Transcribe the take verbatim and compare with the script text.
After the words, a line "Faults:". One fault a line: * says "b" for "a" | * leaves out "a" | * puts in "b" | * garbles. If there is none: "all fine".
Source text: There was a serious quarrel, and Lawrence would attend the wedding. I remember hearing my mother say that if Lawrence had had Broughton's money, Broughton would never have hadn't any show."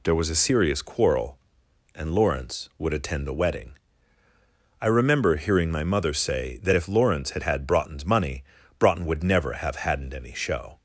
There was a serious quarrel, and Lawrence would attend the wedding. I remember hearing my mother say that if Lawrence had had Broughton's money, Broughton would never have hadn't any show."
Faults:
all fine